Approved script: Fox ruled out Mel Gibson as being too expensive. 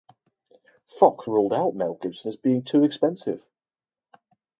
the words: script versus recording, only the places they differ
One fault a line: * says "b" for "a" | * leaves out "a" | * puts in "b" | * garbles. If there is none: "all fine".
all fine